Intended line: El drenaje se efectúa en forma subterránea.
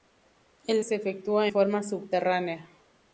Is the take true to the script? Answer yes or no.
no